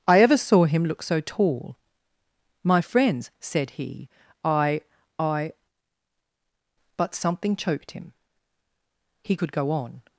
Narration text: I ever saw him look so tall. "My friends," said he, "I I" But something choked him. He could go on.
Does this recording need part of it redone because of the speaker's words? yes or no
no